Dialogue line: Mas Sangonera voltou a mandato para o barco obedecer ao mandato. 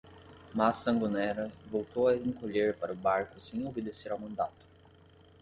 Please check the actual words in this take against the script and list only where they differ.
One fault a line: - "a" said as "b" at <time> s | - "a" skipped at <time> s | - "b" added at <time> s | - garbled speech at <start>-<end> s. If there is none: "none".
- "mandato" said as "encolher" at 2.2 s
- "sem" added at 3.4 s